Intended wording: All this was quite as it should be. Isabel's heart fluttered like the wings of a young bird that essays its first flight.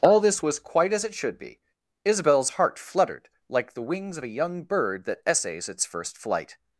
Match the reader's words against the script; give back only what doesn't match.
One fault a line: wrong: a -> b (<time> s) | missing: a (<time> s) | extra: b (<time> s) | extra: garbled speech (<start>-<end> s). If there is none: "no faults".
no faults